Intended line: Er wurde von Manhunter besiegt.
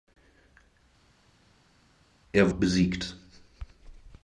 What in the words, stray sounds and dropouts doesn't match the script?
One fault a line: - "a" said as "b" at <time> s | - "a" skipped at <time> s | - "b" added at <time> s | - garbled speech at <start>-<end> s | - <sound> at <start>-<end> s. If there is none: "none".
- "wurde von Manhunter" skipped at 2.5 s